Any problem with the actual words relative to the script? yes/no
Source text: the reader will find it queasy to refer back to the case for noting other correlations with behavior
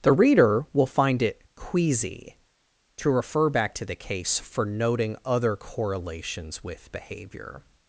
no